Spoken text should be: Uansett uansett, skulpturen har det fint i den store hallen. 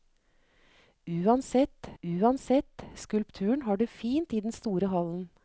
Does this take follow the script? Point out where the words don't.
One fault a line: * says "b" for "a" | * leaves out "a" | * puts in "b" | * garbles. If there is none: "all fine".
all fine